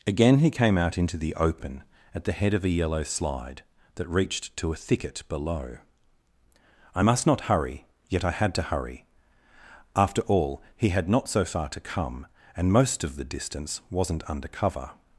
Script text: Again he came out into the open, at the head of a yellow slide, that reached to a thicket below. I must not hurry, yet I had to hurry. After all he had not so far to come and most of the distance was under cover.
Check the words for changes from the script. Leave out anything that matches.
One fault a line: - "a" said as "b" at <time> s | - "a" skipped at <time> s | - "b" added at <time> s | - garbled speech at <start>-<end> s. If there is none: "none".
- "was" said as "wasn't" at 13.9 s